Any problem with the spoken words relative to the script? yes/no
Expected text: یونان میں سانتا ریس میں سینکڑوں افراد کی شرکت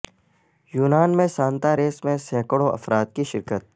no